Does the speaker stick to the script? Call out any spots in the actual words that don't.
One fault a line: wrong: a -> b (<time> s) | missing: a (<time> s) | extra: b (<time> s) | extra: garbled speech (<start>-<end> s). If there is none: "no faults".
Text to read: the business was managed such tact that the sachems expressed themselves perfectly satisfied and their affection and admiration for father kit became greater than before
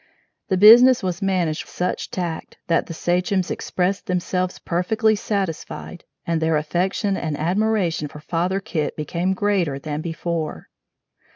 no faults